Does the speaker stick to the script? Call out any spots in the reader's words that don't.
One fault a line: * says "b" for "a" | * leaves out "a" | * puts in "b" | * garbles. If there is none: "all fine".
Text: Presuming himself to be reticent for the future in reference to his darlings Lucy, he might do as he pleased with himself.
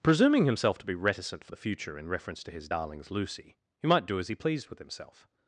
all fine